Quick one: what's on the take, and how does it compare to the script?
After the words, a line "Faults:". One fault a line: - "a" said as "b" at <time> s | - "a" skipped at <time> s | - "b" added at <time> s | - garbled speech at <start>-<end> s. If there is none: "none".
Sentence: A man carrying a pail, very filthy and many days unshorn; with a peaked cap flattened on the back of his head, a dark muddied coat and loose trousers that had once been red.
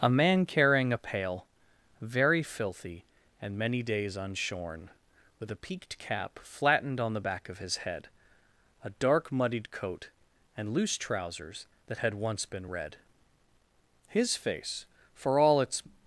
A man carrying a pail, very filthy and many days unshorn; with a peaked cap flattened on the back of his head, a dark muddied coat and loose trousers that had once been red. His face, for all its
Faults:
- "His face for all its" added at 14.1 s